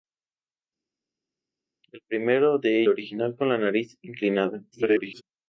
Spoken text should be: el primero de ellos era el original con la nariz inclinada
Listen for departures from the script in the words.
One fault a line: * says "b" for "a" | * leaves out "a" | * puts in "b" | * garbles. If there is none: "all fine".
* leaves out "ellos era el"
* garbles